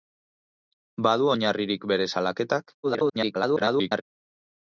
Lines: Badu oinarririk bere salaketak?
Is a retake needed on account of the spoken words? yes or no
yes